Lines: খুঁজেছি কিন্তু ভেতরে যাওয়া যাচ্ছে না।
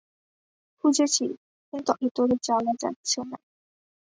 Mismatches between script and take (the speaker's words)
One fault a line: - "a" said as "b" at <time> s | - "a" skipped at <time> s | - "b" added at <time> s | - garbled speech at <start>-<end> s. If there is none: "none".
none